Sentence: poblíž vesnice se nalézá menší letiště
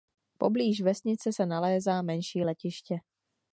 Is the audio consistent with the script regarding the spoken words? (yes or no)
yes